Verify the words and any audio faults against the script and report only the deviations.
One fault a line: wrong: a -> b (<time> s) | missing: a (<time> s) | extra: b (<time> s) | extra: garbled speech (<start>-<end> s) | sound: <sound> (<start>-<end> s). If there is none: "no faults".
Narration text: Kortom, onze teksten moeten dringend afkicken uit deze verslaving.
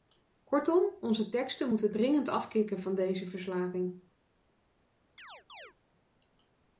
wrong: uit -> van (2.8 s)
sound: chirp (5.2-5.7 s)